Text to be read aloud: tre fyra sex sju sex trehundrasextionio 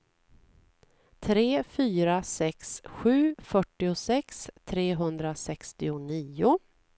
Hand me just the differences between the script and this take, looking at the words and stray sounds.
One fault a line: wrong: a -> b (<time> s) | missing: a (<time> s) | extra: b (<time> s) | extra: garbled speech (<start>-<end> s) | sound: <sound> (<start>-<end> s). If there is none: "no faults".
wrong: sex -> fyrtiosex (3.4 s)